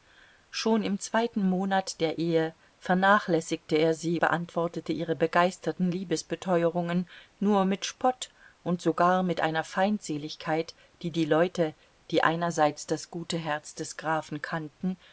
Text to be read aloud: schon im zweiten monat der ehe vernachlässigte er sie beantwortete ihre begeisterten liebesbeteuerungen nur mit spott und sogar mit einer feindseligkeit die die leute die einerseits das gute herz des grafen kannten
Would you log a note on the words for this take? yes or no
no